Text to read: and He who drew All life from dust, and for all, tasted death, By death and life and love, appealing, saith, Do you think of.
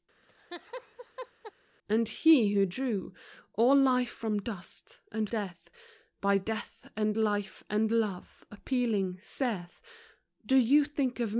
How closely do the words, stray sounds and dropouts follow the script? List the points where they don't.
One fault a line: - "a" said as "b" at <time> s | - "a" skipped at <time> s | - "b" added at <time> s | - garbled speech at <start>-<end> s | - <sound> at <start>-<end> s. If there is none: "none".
- laugh at 0.2-1.5 s
- "for all tasted" skipped at 5.3 s